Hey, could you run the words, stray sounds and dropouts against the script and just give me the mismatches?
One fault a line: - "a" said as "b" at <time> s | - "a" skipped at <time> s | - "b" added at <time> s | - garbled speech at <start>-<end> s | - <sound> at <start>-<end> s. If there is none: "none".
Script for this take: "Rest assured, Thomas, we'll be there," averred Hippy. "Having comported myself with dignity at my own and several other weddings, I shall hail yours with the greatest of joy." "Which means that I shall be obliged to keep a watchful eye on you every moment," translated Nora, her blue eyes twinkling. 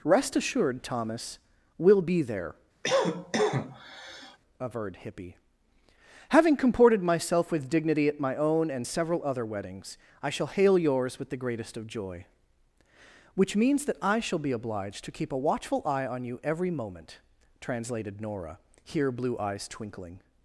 - cough at 2.8-4.4 s
- "her" said as "here" at 18.8 s